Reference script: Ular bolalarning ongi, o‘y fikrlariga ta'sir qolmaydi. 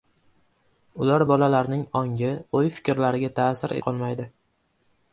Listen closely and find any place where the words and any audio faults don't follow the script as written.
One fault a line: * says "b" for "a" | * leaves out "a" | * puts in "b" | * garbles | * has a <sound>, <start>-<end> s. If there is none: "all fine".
all fine